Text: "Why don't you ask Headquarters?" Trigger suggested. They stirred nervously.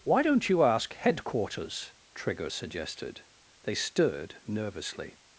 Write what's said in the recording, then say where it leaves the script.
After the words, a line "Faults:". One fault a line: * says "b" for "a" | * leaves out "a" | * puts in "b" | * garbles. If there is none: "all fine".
"Why don't you ask Headquarters?" Trigger suggested. They stirred nervously.
Faults:
all fine